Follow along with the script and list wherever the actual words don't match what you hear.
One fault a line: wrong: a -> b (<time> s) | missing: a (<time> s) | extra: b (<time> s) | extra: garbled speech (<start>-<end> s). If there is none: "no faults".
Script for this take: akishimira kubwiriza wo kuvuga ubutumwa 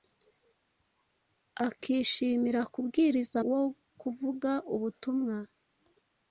no faults